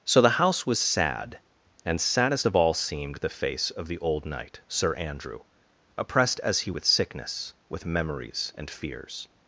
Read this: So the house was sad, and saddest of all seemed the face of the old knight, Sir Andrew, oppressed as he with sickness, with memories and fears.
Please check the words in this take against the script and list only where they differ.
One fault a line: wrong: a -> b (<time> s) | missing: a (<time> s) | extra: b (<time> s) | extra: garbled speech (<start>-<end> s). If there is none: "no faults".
no faults